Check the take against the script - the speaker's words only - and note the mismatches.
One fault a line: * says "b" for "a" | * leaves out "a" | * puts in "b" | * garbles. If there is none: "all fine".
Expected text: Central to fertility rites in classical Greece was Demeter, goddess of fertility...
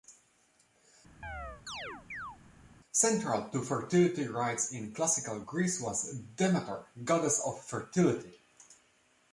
all fine